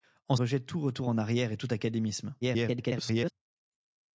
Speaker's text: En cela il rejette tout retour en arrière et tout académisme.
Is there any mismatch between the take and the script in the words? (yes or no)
yes